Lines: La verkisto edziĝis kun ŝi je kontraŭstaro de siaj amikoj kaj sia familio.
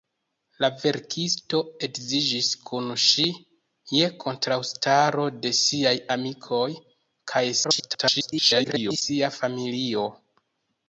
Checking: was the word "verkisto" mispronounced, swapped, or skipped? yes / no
no